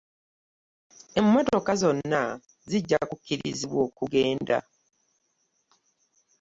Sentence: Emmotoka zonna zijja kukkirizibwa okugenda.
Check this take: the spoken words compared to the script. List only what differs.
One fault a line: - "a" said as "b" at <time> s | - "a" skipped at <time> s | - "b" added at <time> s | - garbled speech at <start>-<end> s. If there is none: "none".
none